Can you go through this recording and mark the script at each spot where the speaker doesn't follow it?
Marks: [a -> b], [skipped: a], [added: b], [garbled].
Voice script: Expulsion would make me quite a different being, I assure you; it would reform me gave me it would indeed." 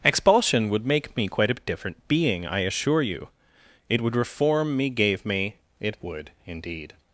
Expulsion would make me quite a different being, I assure you; it would reform me gave me it would indeed."